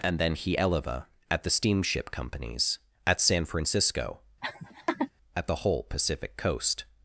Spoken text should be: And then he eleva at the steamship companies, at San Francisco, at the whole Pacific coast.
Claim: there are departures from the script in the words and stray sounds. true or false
true